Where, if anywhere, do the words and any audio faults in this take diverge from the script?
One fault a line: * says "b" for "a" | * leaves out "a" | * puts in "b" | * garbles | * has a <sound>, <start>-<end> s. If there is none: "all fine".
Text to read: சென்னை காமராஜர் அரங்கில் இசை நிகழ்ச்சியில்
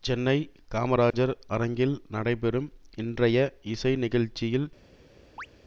* has a dropout, 1.1-1.1 s
* puts in "நடைபெறும் இன்றைய"
* has a chirp, 5.4-5.5 s